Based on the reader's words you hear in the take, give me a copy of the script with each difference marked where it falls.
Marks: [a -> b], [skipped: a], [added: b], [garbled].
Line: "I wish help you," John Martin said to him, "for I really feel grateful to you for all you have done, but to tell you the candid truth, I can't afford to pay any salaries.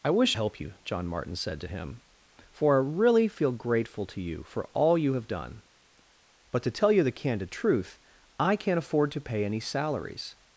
"I wish help you," John Martin said to him, "for I really feel grateful to you for all you have done, but to tell you the candid truth, I can't afford to pay any salaries.